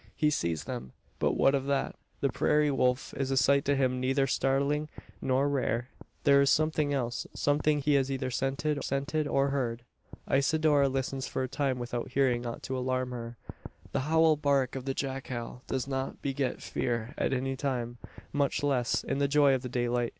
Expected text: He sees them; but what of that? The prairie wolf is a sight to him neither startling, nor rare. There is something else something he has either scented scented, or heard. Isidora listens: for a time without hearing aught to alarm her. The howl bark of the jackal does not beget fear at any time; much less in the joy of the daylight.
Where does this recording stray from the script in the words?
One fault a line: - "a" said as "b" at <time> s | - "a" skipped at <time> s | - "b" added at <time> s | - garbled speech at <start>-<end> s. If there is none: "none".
none